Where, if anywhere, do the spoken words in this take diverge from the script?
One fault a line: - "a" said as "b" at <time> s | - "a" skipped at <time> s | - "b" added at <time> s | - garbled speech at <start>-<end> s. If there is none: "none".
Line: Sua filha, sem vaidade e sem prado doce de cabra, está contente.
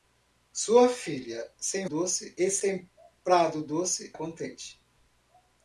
- "vaidade" said as "doce" at 1.8 s
- "de cabra está" skipped at 4.1 s